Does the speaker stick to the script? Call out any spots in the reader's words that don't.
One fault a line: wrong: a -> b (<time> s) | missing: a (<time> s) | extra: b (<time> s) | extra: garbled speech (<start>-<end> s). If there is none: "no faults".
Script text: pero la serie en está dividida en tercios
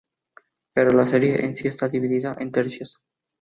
extra: sí (1.6 s)